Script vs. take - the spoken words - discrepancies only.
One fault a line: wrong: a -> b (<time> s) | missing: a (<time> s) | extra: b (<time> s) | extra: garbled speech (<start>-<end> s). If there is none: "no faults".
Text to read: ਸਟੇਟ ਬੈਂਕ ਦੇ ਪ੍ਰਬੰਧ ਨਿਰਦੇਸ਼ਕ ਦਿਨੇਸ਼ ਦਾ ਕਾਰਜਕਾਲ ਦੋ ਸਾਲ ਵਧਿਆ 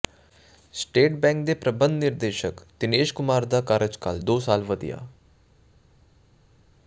extra: ਕੁਮਾਰ (3.1 s)